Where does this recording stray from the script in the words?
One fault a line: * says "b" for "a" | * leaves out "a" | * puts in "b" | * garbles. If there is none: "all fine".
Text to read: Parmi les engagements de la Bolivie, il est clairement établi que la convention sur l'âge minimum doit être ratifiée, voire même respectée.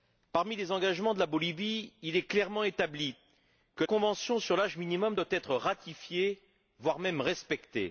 * leaves out "la"